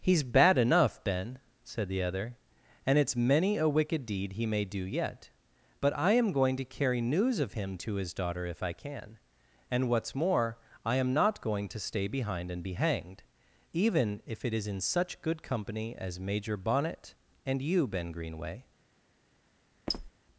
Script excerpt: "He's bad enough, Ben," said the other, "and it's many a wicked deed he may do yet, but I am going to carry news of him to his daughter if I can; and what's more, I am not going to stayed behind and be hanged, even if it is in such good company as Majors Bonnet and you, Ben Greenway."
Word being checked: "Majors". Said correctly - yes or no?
no